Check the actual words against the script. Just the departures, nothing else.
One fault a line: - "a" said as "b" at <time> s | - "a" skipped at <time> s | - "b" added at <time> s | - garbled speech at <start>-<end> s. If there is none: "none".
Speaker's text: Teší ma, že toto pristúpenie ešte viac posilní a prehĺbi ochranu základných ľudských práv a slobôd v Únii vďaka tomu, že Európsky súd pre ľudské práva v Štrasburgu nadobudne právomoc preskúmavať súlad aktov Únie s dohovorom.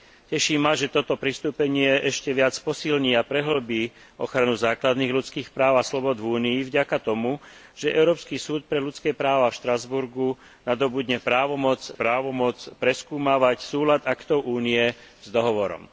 - "právomoc" added at 11.9 s